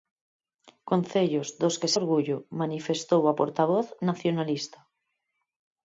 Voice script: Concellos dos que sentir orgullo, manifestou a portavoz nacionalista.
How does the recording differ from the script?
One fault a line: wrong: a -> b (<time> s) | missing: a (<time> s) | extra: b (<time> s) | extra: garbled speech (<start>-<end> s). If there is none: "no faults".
missing: sentir (1.9 s)